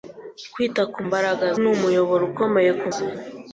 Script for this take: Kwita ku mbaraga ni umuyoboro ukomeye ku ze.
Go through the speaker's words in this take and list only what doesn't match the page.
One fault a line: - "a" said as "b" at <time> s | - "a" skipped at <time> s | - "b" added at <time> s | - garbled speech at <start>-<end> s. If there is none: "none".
none